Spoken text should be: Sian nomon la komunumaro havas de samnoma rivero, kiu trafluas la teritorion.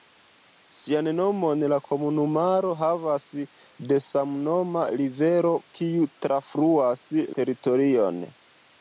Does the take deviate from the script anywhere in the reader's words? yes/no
yes